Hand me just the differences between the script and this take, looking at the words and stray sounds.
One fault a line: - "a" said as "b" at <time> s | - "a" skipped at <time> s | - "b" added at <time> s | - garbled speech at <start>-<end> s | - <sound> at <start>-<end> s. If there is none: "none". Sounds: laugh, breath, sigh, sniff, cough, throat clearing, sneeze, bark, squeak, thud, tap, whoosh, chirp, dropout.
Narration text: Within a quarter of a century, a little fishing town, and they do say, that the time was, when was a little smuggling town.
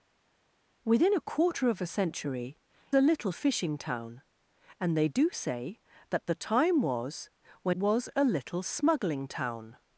none